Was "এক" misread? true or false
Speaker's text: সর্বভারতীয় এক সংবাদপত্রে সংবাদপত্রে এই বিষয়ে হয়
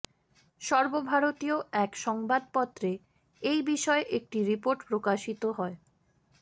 false